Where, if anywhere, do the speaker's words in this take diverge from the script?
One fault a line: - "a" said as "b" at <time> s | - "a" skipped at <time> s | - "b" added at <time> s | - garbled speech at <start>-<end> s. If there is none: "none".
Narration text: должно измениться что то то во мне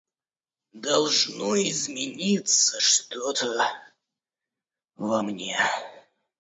- "то" skipped at 3.7 s